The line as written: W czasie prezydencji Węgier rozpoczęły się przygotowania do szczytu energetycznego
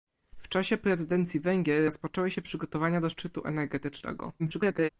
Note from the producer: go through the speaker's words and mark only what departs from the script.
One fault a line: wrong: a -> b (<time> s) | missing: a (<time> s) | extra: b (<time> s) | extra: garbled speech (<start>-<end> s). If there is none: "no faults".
extra: garbled speech (4.4-4.9 s)